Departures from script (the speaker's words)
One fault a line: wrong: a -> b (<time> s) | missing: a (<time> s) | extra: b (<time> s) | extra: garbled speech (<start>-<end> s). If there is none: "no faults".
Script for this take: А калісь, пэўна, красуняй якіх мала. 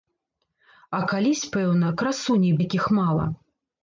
no faults